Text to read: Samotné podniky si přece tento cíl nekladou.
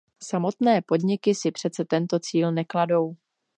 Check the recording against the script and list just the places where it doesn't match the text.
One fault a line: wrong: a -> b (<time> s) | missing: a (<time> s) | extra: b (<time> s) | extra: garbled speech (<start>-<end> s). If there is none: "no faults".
no faults